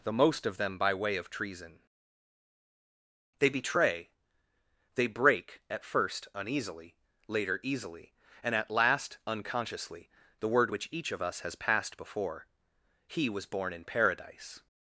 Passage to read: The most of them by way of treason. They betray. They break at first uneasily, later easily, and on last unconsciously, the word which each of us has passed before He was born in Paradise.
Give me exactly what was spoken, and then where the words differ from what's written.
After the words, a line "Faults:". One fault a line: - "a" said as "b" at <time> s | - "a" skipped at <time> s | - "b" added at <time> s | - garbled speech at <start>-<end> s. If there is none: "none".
The most of them by way of treason. They betray. They break at first uneasily, later easily, and at last unconsciously, the word which each of us has passed before He was born in Paradise.
Faults:
- "on" said as "at" at 8.6 s